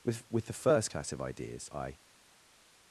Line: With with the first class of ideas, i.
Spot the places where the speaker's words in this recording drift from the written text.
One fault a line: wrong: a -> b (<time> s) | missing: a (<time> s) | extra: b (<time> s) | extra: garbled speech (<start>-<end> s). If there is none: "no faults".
no faults